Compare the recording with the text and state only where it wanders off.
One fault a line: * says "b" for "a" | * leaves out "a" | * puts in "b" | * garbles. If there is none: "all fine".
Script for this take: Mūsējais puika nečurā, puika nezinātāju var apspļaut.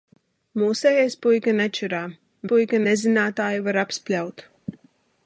all fine